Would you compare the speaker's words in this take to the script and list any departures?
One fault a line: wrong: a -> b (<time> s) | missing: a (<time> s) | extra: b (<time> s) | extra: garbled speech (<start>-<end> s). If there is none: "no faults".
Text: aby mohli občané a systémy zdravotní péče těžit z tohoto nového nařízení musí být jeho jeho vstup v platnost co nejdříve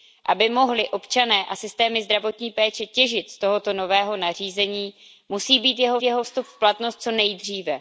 no faults